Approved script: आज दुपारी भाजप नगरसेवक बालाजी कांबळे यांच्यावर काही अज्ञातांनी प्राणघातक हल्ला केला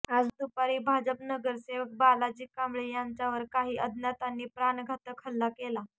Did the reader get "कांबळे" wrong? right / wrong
right